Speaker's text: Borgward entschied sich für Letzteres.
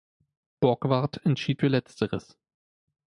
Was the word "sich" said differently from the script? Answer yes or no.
yes